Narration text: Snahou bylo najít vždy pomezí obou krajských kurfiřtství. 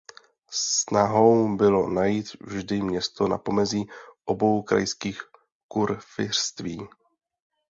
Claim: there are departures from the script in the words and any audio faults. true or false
true